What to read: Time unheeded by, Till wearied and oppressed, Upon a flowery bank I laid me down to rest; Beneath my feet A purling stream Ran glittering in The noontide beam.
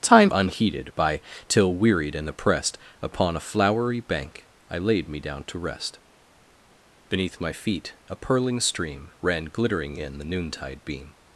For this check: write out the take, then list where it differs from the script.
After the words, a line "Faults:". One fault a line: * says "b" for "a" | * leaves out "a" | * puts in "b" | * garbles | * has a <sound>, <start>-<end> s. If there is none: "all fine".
Time unheeded by, Till wearied and oppressed, Upon a flowery bank I laid me down to rest; Beneath my feet A purling stream Ran glittering in The noontide beam.
Faults:
all fine